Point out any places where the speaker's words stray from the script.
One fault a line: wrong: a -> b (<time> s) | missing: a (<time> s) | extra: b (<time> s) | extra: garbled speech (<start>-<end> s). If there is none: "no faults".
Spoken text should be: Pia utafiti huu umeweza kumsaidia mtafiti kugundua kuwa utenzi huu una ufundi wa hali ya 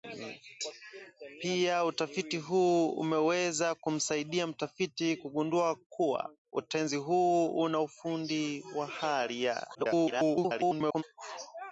extra: garbled speech (9.7-11.0 s)